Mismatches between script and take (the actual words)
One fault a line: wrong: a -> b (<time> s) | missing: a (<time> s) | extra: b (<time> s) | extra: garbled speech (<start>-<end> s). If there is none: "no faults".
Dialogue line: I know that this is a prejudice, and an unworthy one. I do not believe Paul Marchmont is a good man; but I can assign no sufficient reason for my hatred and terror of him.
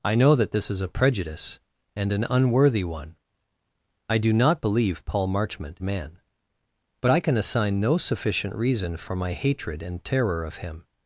missing: is a good (5.8 s)